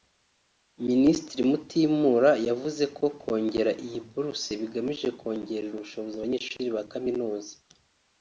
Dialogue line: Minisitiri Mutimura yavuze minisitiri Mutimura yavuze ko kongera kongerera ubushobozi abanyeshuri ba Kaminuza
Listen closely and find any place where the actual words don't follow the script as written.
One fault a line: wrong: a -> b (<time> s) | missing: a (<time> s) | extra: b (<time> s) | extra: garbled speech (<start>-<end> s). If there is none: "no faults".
wrong: minisitiri Mutimura yavuze ko kongera -> ko kongera iyi buruse bigamije (3.0 s)